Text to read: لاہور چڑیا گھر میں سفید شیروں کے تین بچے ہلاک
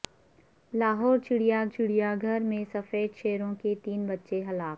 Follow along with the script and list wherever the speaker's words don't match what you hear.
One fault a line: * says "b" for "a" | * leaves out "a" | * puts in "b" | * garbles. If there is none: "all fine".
* puts in "چڑیا"